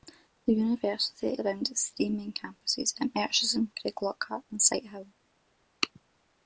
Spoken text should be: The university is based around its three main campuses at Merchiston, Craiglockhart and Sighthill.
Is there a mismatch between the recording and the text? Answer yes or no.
yes